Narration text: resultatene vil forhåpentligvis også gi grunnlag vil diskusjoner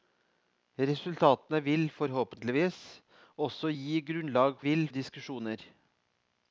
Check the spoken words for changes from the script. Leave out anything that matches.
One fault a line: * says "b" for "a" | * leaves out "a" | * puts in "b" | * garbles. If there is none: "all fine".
all fine